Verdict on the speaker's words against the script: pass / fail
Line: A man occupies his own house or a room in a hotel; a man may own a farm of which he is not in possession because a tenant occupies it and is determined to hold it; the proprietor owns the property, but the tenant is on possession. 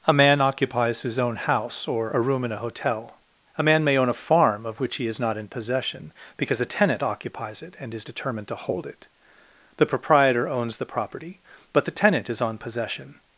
pass